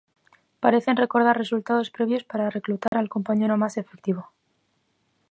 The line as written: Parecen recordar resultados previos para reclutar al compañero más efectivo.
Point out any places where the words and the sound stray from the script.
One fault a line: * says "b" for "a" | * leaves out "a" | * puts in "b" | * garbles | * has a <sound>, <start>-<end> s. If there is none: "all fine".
* has a dropout, 2.9-2.9 s